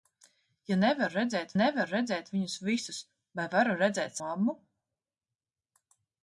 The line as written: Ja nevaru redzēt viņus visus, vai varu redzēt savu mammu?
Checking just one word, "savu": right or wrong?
wrong